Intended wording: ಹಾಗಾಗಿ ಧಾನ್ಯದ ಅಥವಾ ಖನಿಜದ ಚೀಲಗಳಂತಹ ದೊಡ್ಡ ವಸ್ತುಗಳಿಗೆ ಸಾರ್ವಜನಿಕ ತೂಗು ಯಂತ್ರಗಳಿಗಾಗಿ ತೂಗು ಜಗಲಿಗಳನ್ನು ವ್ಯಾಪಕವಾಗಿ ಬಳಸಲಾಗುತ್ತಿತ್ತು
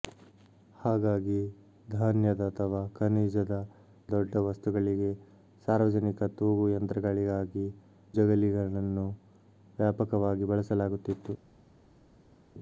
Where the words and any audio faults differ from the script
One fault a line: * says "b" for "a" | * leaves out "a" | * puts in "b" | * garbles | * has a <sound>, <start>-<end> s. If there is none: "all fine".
* leaves out "ಚೀಲಗಳಂತಹ"
* leaves out "ತೂಗು"